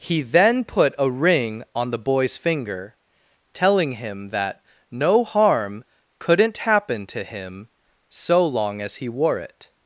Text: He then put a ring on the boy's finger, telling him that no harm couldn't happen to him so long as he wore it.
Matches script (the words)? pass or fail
pass